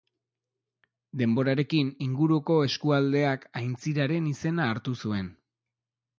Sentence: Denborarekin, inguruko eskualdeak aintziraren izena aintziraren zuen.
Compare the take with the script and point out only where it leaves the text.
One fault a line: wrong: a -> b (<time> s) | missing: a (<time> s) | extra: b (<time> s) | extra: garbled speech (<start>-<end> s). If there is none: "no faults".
wrong: aintziraren -> hartu (4.7 s)